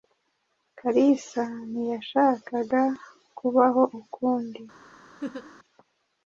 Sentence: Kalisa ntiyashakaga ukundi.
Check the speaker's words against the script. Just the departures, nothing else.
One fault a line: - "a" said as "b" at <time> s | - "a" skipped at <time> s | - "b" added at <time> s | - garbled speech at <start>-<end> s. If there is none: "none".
- "kubaho" added at 3.4 s